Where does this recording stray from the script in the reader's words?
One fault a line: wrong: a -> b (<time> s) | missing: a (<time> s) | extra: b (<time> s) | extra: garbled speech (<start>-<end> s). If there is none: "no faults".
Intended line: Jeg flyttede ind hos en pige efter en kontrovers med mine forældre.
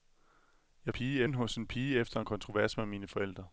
wrong: flyttede -> pige (0.9 s)